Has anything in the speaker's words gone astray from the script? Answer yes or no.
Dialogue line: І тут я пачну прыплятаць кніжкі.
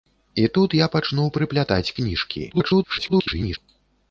yes